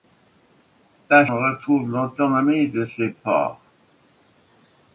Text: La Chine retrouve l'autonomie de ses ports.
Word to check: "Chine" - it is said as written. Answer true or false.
false